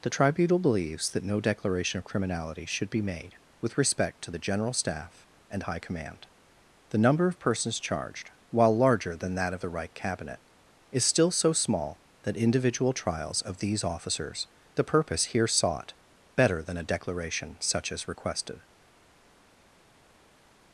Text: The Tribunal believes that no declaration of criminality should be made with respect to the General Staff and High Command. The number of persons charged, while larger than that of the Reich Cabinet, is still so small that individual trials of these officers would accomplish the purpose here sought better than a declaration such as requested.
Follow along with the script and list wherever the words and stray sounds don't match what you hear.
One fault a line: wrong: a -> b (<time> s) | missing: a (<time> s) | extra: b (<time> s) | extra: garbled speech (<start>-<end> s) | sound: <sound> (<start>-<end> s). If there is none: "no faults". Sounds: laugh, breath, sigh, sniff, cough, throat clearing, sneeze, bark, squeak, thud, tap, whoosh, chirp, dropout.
missing: would accomplish (14.5 s)